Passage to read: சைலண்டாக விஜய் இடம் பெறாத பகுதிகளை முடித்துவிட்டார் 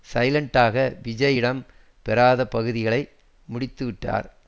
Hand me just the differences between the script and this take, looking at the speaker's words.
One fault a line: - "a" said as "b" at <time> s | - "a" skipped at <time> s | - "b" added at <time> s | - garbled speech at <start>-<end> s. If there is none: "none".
none